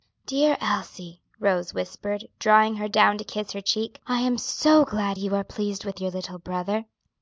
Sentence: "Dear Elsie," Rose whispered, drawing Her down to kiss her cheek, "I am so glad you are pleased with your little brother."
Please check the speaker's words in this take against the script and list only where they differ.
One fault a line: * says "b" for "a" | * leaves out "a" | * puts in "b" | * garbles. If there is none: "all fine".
all fine